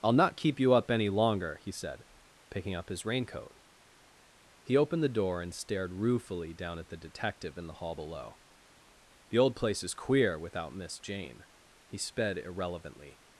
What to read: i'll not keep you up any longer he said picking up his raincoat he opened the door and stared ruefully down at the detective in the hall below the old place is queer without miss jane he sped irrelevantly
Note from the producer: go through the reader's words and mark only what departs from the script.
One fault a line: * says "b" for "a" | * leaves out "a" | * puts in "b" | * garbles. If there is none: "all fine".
all fine